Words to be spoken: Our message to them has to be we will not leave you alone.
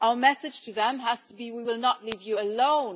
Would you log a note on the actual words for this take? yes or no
no